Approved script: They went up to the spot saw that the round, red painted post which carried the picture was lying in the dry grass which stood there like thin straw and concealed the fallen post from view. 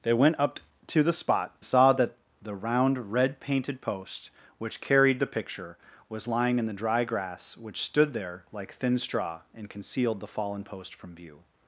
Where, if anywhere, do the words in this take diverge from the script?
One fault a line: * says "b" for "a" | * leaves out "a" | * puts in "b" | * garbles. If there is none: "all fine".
all fine